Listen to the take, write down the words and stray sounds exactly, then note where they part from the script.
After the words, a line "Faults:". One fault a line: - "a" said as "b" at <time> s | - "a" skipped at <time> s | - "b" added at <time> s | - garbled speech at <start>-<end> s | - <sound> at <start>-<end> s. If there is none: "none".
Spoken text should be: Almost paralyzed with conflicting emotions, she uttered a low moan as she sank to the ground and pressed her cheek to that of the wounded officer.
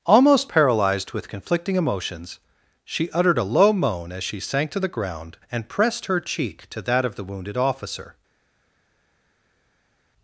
Almost paralyzed with conflicting emotions, she uttered a low moan as she sank to the ground and pressed her cheek to that of the wounded officer.
Faults:
none